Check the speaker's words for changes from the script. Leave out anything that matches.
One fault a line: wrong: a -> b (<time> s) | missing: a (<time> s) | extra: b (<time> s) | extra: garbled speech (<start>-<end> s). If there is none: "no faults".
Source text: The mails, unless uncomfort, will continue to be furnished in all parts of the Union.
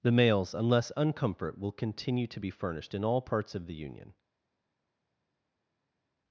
no faults